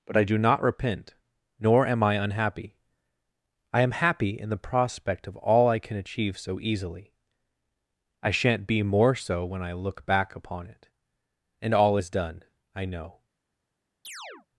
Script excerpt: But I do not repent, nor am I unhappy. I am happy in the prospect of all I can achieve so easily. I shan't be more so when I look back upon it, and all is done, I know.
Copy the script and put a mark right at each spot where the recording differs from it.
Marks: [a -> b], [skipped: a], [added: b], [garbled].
But I do not repent, nor am I unhappy. I am happy in the prospect of all I can achieve so easily. I shan't be more so when I look back upon it, and all is done, I know.